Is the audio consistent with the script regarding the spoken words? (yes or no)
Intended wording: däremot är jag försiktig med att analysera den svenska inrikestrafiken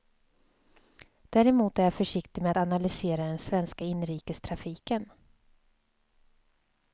yes